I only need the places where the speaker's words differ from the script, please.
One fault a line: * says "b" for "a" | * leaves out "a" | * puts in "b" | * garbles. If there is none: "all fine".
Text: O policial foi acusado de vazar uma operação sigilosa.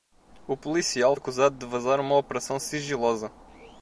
* leaves out "foi"